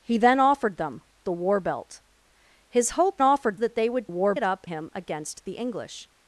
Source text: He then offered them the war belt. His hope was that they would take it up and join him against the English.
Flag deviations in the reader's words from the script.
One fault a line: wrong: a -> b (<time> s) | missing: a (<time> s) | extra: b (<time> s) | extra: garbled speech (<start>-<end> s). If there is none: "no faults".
wrong: was -> offered (3.2 s)
wrong: take -> war (4.1 s)
missing: and join (4.7 s)